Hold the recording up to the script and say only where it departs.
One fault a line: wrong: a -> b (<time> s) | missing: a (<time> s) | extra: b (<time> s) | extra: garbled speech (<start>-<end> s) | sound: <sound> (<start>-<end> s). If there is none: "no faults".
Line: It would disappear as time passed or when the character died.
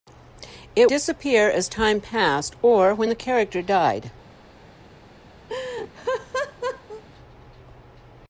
missing: would (0.9 s)
sound: laugh (5.5-7.0 s)